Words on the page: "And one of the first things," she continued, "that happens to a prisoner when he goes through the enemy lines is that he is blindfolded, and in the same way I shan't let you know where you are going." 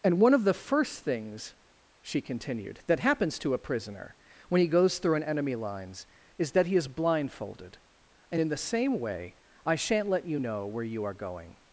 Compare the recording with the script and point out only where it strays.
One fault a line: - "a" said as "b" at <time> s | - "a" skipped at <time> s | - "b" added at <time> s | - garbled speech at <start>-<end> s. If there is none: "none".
- "the" said as "an" at 5.1 s